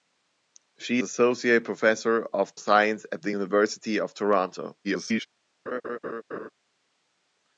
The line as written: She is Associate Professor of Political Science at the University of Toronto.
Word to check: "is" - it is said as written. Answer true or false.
false